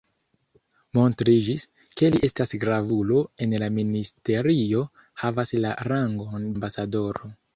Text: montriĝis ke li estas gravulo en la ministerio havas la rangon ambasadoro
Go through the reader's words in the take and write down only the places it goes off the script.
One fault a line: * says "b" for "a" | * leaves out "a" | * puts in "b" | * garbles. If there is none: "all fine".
all fine